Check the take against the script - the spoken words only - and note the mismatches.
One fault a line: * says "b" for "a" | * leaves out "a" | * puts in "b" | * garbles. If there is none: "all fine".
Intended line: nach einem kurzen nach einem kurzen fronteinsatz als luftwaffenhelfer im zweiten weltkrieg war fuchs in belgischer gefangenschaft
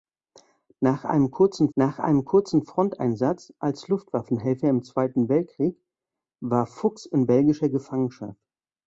all fine